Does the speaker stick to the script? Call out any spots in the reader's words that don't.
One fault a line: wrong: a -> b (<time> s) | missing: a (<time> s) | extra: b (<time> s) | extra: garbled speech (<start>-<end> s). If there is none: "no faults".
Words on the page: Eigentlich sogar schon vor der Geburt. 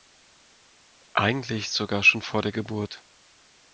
no faults